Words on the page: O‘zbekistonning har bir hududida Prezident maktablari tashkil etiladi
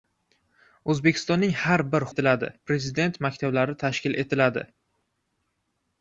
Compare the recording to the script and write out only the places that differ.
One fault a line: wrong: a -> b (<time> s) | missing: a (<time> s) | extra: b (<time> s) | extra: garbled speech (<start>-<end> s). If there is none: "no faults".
wrong: hududida -> etiladi (2.1 s)